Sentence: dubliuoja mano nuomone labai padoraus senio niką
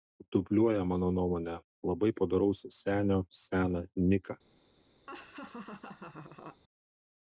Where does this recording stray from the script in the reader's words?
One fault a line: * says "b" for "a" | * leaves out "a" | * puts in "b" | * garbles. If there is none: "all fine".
* puts in "seną"